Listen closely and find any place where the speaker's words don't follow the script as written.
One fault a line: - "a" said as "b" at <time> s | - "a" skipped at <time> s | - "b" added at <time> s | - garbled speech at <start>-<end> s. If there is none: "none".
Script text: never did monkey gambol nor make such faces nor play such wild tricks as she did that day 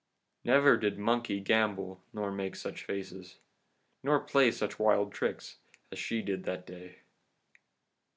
none